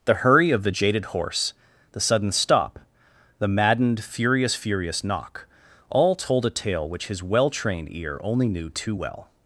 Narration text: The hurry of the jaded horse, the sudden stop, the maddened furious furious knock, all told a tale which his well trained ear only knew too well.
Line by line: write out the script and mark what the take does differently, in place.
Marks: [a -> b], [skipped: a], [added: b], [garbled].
The hurry of the jaded horse, the sudden stop, the maddened furious furious knock, all told a tale which his well trained ear only knew too well.